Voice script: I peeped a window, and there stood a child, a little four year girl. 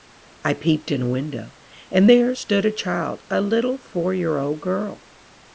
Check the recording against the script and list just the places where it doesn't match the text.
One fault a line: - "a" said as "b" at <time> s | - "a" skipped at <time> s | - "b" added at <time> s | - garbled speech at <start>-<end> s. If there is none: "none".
- "in" added at 0.9 s
- "old" added at 4.4 s